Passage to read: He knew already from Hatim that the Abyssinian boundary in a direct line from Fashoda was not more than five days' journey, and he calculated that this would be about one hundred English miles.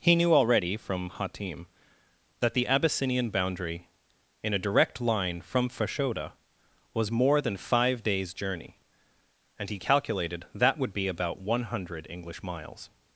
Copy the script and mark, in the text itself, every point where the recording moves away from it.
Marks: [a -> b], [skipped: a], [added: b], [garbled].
He knew already from Hatim that the Abyssinian boundary in a direct line from Fashoda was [skipped: not] more than five days' journey, and he calculated that [skipped: this] would be about one hundred English miles.